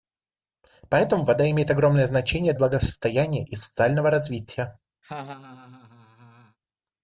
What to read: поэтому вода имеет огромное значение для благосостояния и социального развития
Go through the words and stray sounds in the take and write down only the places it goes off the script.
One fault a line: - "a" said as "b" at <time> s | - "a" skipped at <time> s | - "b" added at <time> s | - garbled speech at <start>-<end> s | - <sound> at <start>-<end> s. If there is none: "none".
- "для" skipped at 2.5 s
- laugh at 5.0-6.6 s